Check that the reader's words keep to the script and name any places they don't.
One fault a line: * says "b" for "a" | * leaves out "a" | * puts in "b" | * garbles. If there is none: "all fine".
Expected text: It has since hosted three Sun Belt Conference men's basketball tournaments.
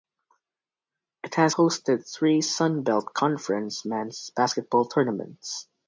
* leaves out "since"